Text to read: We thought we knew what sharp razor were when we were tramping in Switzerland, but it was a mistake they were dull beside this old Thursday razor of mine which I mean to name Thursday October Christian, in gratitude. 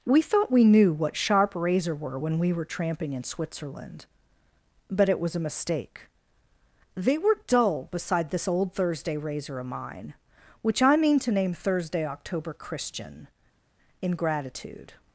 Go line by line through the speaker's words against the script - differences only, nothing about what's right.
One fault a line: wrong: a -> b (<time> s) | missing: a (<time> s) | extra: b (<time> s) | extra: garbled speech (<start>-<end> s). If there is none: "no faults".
no faults